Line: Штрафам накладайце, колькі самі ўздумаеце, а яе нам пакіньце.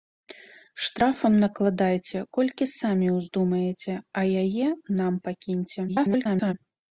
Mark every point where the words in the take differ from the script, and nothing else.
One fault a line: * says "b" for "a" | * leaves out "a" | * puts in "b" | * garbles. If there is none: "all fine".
* garbles